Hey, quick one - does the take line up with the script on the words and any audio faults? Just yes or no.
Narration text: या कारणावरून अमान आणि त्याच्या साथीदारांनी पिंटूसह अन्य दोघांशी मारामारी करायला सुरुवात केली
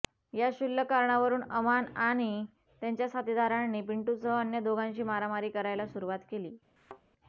no